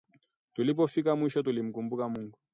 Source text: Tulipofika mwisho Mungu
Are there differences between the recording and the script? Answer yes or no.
yes